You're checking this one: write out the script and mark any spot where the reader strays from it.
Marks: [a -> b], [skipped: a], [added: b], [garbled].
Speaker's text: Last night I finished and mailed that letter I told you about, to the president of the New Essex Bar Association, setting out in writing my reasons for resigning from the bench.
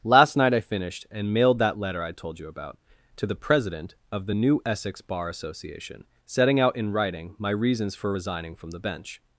Last night I finished and mailed that letter I told you about, to the president of the New Essex Bar Association, setting out in writing my reasons for resigning from the bench.